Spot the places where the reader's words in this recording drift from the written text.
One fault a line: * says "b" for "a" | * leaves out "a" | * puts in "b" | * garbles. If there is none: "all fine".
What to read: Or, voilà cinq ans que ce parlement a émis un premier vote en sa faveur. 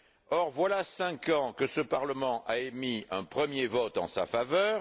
all fine